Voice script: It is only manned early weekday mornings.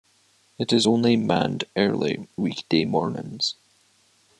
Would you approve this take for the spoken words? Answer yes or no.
yes